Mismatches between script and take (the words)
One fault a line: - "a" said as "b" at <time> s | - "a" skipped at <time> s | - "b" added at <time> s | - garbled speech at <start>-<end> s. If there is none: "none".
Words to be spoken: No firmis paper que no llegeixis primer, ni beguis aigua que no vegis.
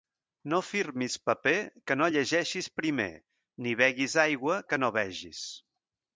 none